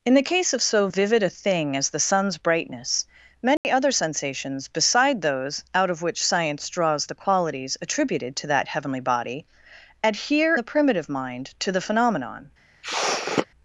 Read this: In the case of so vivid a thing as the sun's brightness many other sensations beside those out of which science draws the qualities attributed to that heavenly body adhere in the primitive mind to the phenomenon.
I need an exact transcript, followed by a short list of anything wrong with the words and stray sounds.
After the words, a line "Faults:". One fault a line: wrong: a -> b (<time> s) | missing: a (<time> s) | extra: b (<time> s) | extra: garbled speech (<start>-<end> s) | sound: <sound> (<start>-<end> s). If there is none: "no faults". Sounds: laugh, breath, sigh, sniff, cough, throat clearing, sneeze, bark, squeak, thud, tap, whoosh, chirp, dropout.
In the case of so vivid a thing as the sun's brightness many other sensations beside those out of which science draws the qualities attributed to that heavenly body adhere the primitive mind to the phenomenon.
Faults:
sound: dropout (3.6-3.6 s)
missing: in (10.5 s)
sound: sniff (12.8-13.5 s)